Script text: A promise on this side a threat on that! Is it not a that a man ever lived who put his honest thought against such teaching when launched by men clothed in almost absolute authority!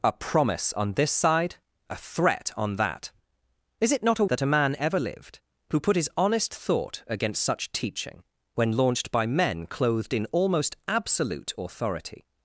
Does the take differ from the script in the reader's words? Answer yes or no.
no